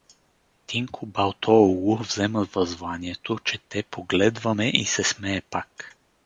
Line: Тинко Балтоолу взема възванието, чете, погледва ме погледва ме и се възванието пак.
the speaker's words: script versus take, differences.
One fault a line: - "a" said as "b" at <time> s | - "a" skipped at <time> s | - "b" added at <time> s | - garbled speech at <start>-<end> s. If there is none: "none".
- "погледва ме" skipped at 4.7 s
- "възванието" said as "смее" at 5.0 s